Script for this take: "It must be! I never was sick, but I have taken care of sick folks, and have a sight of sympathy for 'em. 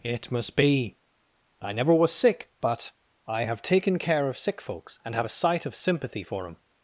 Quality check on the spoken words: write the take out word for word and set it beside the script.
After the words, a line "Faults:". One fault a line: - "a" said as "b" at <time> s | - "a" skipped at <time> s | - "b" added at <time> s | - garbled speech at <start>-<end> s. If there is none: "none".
"It must be! I never was sick, but I have taken care of sick folks, and have a sight of sympathy for 'em.
Faults:
none